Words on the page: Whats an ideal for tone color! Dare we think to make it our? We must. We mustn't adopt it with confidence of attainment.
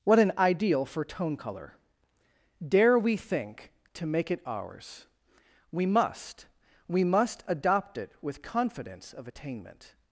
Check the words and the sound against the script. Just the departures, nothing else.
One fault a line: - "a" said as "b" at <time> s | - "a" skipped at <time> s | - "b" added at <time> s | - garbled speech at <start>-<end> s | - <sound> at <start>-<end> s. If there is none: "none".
- "Whats" said as "What" at 0.0 s
- "our" said as "ours" at 4.5 s
- "mustn't" said as "must" at 7.0 s